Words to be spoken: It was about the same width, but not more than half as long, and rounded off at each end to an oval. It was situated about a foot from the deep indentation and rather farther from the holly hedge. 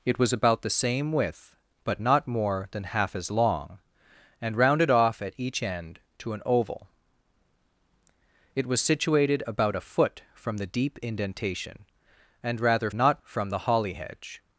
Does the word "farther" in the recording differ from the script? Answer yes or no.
yes